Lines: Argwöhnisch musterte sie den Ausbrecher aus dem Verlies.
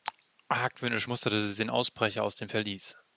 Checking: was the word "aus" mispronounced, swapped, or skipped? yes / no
no